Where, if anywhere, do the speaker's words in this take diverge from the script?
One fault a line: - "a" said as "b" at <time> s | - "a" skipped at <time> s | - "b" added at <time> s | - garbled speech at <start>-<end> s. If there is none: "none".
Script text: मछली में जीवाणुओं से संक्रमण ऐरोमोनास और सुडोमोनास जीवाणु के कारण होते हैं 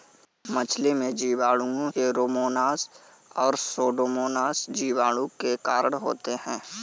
- "से संक्रमण" skipped at 1.9 s